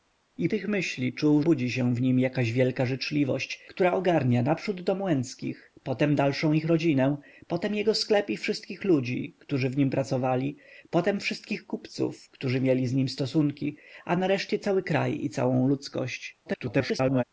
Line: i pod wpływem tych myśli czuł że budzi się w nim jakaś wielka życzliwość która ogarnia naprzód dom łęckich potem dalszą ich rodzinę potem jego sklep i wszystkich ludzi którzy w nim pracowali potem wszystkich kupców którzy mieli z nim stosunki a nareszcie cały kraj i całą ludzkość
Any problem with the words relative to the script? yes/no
yes